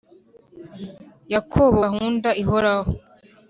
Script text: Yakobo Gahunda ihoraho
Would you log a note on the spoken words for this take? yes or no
no